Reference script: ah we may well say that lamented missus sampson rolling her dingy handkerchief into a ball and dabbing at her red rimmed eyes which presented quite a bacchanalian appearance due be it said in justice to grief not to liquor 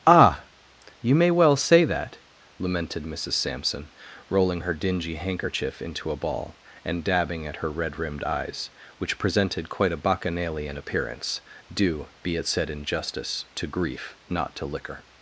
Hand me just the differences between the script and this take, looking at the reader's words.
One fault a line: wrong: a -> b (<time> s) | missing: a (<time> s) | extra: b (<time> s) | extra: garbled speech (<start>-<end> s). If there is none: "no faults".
wrong: we -> you (1.0 s)